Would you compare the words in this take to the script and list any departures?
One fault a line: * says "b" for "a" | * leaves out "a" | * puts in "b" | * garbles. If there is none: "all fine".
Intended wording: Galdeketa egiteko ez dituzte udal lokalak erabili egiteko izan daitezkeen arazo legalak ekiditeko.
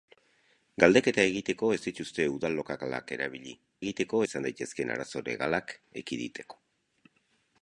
all fine